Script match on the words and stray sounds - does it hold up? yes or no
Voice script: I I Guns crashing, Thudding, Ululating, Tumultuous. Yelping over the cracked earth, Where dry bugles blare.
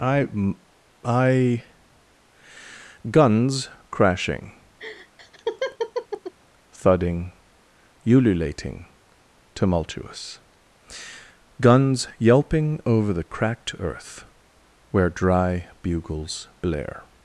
no